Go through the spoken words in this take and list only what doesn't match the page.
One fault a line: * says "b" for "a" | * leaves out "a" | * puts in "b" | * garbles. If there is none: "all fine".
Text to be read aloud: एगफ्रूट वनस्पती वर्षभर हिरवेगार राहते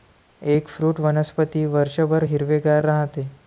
all fine